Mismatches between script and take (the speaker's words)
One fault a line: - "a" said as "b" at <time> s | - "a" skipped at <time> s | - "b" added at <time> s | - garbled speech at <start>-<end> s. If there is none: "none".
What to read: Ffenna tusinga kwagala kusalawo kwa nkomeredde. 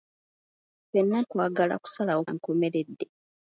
- "tusinga" skipped at 1.2 s
- "kwa" skipped at 2.2 s